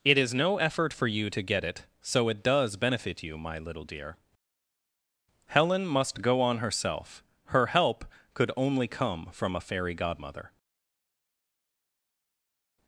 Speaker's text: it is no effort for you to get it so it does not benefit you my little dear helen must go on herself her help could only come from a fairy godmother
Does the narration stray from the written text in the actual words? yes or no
yes